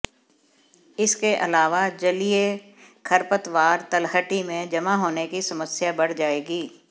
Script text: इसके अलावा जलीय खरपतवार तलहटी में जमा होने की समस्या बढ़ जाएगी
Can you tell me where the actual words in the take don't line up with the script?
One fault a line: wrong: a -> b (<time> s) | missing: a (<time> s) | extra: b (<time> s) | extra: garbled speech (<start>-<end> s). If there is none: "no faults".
no faults